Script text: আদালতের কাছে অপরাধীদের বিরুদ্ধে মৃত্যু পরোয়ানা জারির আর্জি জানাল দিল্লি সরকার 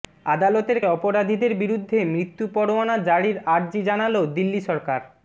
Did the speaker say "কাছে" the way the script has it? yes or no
no